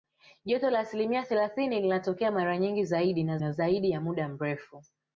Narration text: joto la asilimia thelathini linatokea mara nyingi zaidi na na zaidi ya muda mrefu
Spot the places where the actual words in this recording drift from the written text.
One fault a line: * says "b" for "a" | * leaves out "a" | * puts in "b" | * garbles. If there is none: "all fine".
all fine